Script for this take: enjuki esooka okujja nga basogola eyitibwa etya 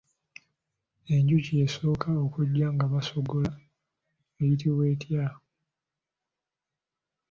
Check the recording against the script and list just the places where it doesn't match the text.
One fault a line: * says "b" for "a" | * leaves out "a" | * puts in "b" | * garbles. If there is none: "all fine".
all fine